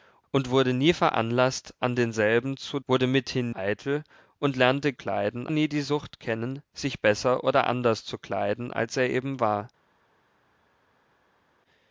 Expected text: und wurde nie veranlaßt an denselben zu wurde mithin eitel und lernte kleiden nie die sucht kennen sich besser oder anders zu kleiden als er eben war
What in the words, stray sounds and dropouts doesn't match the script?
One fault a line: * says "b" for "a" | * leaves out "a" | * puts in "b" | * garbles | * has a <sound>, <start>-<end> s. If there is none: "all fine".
all fine